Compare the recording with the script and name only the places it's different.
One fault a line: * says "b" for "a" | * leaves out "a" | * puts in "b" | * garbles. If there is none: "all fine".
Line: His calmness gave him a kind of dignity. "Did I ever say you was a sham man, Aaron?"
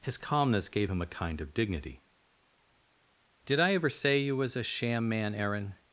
all fine